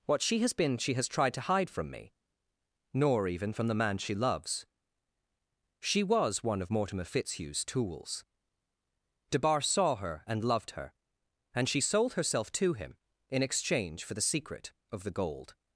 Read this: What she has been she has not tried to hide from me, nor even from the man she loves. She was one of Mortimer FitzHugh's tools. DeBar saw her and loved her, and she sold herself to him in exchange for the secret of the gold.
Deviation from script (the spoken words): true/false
true